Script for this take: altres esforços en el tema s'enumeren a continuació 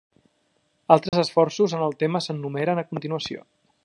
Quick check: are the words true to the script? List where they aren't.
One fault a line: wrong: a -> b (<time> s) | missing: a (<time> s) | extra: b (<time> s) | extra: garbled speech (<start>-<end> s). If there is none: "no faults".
no faults